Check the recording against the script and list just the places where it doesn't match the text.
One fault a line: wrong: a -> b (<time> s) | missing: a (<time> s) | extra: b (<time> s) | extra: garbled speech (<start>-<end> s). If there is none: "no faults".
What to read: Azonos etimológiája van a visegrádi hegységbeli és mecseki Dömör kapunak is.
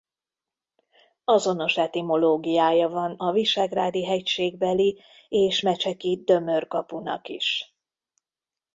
no faults